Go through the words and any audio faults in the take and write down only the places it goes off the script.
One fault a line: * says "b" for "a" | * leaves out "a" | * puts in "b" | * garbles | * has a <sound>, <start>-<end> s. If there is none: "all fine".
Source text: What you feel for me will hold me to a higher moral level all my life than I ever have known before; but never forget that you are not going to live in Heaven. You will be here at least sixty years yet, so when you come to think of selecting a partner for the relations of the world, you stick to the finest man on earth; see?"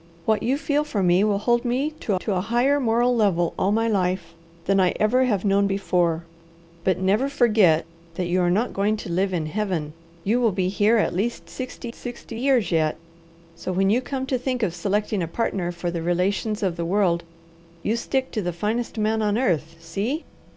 * puts in "to"
* puts in "sixty"